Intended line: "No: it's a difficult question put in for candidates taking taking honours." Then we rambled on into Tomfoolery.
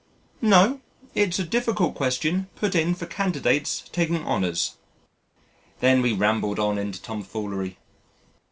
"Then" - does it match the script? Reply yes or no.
yes